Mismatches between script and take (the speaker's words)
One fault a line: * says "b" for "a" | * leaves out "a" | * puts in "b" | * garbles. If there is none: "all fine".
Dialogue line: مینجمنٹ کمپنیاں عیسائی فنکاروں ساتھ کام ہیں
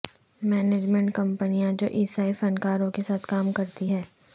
* puts in "جو"
* puts in "کے"
* puts in "کرتی"